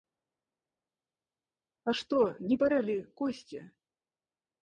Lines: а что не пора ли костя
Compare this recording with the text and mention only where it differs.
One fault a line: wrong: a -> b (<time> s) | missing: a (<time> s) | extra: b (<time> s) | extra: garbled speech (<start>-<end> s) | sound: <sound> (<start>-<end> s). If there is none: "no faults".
no faults